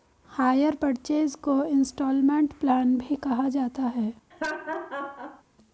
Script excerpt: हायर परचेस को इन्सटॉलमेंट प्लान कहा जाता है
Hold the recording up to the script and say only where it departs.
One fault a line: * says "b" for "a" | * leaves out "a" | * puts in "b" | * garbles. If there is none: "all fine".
* puts in "भी"